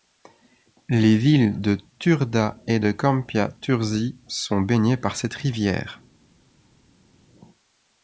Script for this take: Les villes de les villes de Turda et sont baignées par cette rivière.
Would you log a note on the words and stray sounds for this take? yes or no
yes